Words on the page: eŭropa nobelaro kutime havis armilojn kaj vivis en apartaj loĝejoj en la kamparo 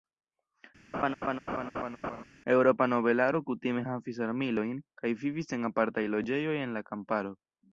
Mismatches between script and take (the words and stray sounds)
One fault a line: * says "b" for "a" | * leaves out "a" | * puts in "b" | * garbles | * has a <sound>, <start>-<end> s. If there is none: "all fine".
* has a laugh, 0.9-2.2 s